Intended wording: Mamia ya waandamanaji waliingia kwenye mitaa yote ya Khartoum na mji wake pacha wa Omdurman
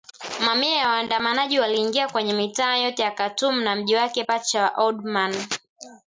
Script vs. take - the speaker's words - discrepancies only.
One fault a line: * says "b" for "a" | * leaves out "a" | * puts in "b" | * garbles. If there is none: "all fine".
all fine